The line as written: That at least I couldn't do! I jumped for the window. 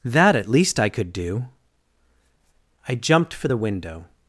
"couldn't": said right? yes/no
no